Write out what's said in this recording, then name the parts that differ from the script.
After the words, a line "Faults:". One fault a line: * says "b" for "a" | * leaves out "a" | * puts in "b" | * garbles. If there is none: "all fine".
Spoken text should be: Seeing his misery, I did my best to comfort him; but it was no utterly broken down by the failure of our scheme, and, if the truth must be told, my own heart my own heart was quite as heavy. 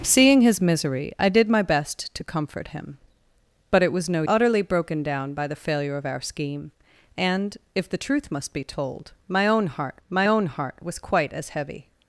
Seeing his misery, I did my best to comfort him; but it was no utterly broken down by the failure of our scheme, and, if the truth must be told, my own heart my own heart was quite as heavy.
Faults:
all fine